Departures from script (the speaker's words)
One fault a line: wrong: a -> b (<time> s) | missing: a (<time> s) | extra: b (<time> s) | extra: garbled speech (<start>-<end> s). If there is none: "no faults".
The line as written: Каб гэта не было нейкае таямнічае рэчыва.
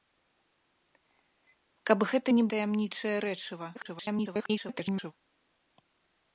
missing: было нейкае (2.5 s)
extra: garbled speech (3.7-5.1 s)